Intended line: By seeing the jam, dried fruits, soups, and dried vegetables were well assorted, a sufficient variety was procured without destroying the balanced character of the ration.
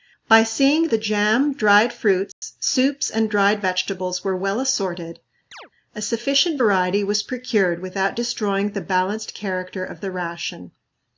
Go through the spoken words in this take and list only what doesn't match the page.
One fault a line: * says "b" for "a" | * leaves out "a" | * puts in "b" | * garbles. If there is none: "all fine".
all fine